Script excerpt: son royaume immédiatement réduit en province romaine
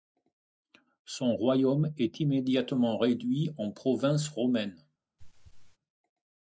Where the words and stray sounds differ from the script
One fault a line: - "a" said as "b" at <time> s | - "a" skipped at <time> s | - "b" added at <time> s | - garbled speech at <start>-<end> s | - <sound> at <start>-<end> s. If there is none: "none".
- "est" added at 1.9 s
- throat clearing at 5.2-5.8 s